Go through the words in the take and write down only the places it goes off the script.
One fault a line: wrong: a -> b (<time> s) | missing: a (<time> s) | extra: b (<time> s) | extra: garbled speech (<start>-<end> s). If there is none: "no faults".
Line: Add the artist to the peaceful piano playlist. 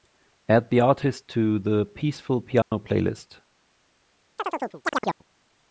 no faults